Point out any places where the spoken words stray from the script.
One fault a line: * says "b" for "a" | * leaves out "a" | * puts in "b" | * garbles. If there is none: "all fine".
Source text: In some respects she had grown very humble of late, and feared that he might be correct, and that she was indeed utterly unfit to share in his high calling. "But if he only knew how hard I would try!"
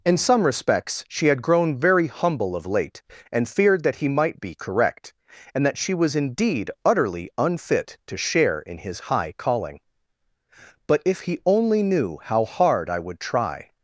all fine